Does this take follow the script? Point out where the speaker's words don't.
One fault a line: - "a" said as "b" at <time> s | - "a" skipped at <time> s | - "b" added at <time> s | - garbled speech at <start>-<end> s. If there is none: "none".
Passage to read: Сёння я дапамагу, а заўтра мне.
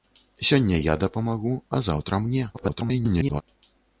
- garbled speech at 2.5-3.4 s